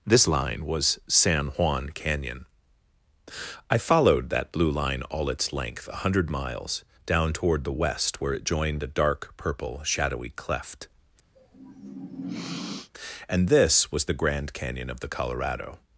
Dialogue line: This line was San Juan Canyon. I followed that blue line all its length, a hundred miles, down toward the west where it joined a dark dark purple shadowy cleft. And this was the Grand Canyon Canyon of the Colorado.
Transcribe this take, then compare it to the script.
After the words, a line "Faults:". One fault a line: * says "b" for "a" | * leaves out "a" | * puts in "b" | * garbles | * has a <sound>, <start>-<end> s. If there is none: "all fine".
This line was San Juan Canyon. I followed that blue line all its length, a hundred miles, down toward the west where it joined a dark purple shadowy cleft. And this was the Grand Canyon of the Colorado.
Faults:
* leaves out "dark"
* has a sniff, 11.4-12.9 s
* leaves out "Canyon"